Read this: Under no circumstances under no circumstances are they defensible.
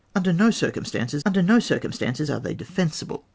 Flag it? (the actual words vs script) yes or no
no